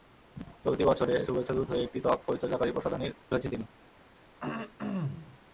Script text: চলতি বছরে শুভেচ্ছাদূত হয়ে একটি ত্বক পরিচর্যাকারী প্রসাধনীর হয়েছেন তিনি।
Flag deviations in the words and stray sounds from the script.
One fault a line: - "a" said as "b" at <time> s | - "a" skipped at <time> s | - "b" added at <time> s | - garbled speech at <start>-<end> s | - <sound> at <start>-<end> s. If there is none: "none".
- throat clearing at 4.4-5.4 s